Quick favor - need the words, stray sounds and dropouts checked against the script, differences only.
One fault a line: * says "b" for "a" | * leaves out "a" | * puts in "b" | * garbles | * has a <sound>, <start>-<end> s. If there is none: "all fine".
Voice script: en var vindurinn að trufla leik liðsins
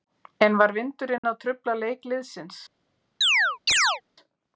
* has a dropout, 1.2-1.2 s
* has a chirp, 3.2-4.0 s